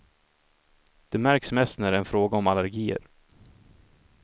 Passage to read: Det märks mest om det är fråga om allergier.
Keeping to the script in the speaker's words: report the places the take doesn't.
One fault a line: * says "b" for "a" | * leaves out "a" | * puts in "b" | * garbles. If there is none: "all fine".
* says "när" for "om"